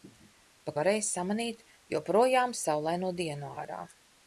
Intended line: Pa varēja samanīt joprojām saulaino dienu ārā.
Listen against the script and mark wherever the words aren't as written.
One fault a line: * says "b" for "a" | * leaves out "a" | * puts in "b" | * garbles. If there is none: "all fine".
all fine